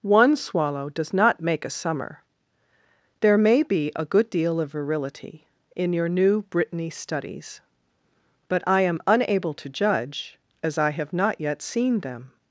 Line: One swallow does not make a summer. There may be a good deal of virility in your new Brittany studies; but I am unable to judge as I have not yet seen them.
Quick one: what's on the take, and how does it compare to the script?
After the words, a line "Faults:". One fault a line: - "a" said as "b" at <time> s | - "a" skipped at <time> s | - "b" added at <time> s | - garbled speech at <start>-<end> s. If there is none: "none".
One swallow does not make a summer. There may be a good deal of virility in your new Brittany studies; but I am unable to judge as I have not yet seen them.
Faults:
none